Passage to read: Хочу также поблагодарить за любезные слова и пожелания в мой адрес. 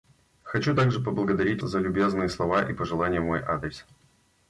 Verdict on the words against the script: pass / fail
pass